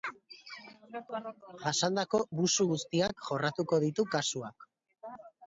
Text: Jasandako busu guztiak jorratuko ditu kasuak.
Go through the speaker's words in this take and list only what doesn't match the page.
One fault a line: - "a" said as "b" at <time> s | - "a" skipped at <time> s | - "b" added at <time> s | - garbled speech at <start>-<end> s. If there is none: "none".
none